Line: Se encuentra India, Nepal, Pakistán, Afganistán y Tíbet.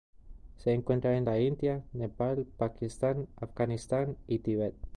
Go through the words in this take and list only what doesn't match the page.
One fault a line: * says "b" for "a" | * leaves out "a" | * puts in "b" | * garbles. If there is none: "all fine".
* puts in "en la"